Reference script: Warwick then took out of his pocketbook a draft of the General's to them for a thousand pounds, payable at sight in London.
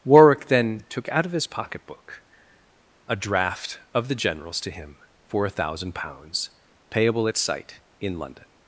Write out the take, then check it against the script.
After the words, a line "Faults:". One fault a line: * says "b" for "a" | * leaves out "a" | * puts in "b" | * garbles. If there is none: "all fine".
Warwick then took out of his pocketbook a draft of the General's to him for a thousand pounds, payable at sight in London.
Faults:
* says "him" for "them"